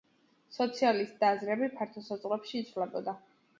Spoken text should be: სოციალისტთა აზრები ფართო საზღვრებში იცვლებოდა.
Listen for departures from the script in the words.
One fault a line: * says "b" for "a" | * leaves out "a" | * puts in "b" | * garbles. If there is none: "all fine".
all fine